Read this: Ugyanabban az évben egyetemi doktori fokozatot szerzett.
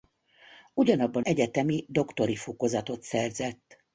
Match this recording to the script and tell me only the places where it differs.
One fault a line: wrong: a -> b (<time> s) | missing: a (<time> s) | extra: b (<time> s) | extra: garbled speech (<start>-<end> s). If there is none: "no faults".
missing: az évben (1.2 s)